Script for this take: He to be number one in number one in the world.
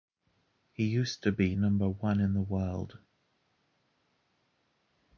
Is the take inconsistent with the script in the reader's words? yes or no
yes